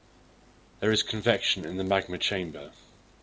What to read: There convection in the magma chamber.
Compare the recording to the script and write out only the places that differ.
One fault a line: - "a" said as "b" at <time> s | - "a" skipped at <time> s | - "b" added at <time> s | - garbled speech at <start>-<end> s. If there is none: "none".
- "is" added at 0.9 s